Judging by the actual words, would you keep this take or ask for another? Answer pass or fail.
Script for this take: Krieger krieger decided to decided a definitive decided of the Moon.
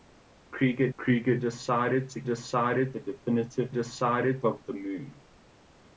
pass